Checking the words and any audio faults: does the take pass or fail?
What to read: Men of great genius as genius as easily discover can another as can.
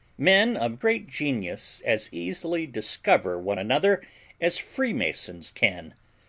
fail